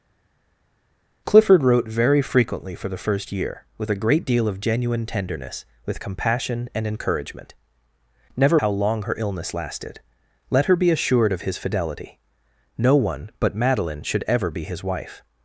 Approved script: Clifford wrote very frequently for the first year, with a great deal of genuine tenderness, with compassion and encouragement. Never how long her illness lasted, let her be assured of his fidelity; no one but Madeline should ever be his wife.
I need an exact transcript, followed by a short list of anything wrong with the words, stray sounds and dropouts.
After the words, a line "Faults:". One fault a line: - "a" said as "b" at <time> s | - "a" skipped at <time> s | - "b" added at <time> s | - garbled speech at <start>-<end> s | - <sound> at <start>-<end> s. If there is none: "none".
Clifford wrote very frequently for the first year, with a great deal of genuine tenderness, with compassion and encouragement. Never how long her illness lasted, let her be assured of his fidelity; no one but Madeline should ever be his wife.
Faults:
none